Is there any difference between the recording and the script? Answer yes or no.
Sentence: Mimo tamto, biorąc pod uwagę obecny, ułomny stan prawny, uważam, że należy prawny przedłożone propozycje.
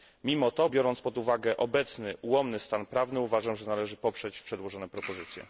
yes